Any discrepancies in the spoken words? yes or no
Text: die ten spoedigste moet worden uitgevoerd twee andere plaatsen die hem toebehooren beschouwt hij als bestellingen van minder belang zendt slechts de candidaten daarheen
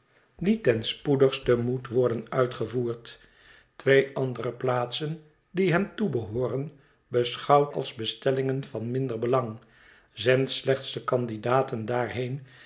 yes